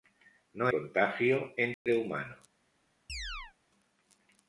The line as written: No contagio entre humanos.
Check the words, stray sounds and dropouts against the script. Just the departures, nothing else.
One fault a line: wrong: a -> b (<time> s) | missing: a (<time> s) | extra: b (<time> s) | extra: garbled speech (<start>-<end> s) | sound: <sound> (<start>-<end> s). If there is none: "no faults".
sound: dropout (1.7-1.9 s)
sound: chirp (3.1-3.5 s)